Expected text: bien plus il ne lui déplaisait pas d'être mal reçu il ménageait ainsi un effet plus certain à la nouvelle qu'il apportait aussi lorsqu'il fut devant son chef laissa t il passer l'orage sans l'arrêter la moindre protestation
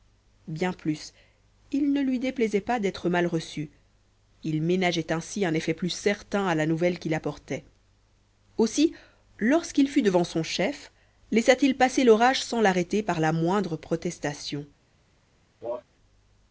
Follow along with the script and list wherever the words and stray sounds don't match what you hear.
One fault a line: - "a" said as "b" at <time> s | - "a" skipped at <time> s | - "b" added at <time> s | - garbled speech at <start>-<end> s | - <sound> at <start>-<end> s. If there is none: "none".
- "par" added at 13.0 s
- cough at 15.6-15.8 s